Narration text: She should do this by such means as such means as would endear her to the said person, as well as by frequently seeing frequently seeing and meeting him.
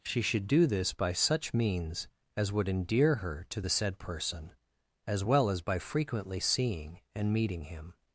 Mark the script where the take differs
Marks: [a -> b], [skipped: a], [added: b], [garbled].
She should do this by such means as [skipped: such means as] would endear her to the said person, as well as by frequently seeing [skipped: frequently seeing] and meeting him.